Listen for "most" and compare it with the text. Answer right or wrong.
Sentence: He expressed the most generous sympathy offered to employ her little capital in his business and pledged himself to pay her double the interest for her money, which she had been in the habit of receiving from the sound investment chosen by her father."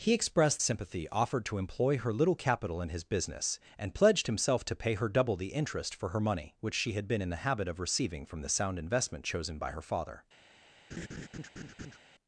wrong